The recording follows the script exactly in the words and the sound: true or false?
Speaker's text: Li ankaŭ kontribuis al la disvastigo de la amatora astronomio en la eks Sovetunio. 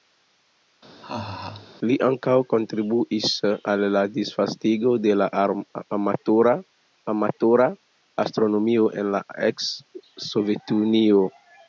false